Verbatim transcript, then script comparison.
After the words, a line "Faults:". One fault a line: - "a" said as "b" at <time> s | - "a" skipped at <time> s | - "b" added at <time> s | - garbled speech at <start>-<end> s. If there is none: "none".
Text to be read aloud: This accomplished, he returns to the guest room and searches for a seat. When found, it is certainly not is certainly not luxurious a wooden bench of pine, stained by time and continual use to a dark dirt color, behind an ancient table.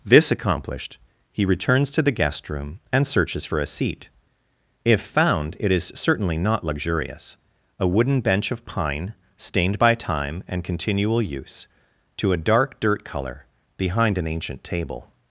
This accomplished, he returns to the guest room and searches for a seat. If found, it is certainly not luxurious a wooden bench of pine, stained by time and continual use to a dark dirt color, behind an ancient table.
Faults:
- "When" said as "If" at 4.8 s
- "is certainly not" skipped at 6.6 s